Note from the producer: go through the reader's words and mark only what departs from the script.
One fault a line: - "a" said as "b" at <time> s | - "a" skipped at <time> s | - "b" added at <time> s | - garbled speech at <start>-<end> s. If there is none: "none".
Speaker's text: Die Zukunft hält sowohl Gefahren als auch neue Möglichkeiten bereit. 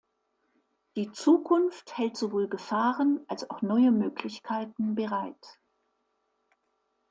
none